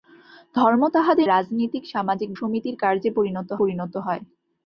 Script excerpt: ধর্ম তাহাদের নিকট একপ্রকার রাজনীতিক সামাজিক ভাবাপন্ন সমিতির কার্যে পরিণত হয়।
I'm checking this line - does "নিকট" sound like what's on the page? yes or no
no